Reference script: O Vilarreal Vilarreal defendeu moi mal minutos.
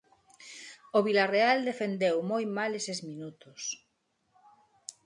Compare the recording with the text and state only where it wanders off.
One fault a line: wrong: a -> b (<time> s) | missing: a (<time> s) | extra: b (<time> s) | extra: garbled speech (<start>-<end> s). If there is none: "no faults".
missing: Vilarreal (1.6 s)
extra: eses (2.8 s)